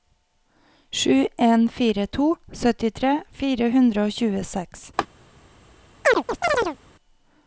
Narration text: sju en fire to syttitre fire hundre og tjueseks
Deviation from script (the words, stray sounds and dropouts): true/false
true